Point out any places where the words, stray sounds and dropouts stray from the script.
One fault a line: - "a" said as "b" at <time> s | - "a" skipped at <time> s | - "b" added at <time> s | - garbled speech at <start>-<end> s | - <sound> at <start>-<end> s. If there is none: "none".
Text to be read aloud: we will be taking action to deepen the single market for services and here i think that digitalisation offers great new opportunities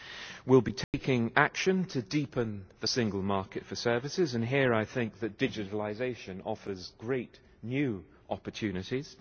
- dropout at 0.8-0.9 s